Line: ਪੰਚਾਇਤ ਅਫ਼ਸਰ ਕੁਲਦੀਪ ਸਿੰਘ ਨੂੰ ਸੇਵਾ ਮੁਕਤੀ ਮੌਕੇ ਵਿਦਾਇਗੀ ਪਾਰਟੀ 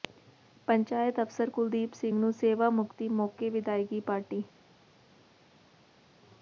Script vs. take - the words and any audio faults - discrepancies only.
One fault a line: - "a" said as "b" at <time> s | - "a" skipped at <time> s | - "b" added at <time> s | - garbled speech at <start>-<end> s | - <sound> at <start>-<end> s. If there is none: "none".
none